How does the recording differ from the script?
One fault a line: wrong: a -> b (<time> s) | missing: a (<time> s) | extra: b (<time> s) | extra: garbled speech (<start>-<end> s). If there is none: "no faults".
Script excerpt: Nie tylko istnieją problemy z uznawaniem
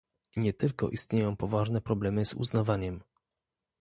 extra: poważne (1.4 s)